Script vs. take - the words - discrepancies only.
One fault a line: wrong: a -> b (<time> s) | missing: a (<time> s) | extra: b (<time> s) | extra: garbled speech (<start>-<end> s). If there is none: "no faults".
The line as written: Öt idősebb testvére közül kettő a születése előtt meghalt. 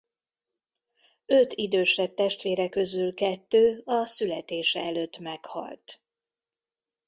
no faults